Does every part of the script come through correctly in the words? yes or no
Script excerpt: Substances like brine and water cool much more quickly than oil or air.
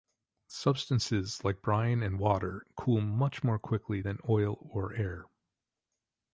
yes